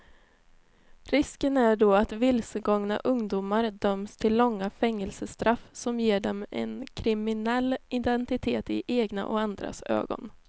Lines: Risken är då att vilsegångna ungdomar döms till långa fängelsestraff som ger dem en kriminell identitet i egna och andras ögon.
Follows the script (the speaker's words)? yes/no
yes